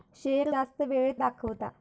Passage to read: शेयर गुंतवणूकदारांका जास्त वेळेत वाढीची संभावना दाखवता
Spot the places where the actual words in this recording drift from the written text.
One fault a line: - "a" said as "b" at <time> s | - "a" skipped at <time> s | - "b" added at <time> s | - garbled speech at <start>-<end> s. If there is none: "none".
- "गुंतवणूकदारांका" skipped at 0.5 s
- "वाढीची संभावना" skipped at 1.2 s